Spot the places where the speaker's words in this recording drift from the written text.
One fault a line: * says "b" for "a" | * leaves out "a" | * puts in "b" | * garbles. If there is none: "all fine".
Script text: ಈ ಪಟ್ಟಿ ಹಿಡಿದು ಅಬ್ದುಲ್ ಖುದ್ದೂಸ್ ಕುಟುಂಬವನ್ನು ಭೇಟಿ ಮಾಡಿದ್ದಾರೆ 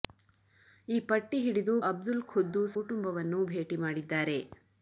all fine